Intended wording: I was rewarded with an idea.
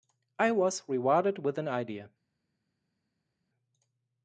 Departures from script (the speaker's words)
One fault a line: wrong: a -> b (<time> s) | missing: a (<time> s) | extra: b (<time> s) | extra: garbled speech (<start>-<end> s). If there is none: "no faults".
no faults